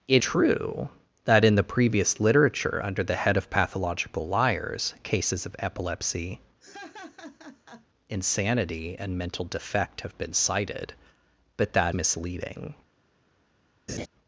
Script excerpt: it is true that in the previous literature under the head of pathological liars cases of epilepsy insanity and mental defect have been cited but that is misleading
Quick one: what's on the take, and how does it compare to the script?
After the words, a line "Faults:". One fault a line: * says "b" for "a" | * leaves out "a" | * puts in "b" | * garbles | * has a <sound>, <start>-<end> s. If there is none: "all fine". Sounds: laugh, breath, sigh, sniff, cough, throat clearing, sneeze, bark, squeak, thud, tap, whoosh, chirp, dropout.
it true that in the previous literature under the head of pathological liars cases of epilepsy insanity and mental defect have been cited but that misleading
Faults:
* leaves out "is"
* has a laugh, 6.6-7.9 s
* leaves out "is"
* has a laugh, 13.9-14.1 s